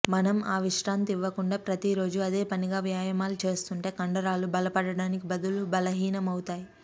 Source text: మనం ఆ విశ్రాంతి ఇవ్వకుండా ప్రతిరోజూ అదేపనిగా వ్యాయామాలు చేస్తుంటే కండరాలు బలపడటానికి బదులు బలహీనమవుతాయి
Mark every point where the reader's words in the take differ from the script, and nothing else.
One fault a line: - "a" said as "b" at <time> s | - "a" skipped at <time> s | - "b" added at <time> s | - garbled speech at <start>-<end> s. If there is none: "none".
none